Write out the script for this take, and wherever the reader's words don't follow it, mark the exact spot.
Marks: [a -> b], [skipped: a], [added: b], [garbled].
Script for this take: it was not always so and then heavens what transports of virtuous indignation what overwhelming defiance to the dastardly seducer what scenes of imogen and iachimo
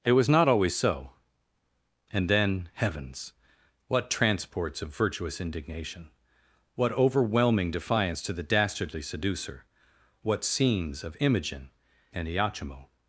it was not always so and then heavens what transports of virtuous indignation what overwhelming defiance to the dastardly seducer what scenes of imogen and iachimo